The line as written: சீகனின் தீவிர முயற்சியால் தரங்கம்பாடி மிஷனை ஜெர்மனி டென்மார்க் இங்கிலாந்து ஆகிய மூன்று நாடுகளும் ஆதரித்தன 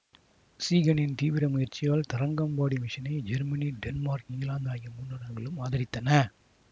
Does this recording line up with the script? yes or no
yes